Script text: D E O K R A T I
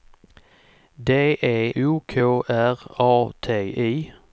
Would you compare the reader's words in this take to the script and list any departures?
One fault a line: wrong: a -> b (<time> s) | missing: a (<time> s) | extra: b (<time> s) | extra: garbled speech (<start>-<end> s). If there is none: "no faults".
no faults